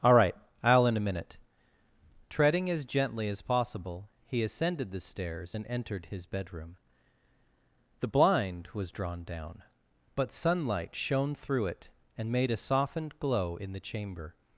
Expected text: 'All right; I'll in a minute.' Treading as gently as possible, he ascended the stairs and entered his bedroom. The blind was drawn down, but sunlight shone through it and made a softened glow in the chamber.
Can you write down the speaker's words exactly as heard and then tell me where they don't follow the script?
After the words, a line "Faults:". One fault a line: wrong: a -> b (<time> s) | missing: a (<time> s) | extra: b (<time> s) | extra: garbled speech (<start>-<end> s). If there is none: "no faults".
'All right; I'll in a minute.' Treading as gently as possible, he ascended the stairs and entered his bedroom. The blind was drawn down, but sunlight shone through it and made a softened glow in the chamber.
Faults:
no faults